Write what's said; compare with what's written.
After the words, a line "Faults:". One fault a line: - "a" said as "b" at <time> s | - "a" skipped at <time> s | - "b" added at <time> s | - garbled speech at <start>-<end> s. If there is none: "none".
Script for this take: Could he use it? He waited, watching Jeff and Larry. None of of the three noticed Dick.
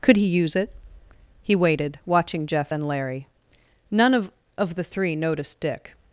Could he use it? He waited, watching Jeff and Larry. None of of the three noticed Dick.
Faults:
none